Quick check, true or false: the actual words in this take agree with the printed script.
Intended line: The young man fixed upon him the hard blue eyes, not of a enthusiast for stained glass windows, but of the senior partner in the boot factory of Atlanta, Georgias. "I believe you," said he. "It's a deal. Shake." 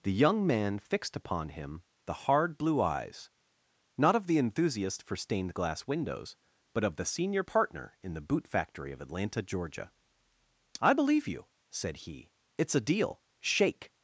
false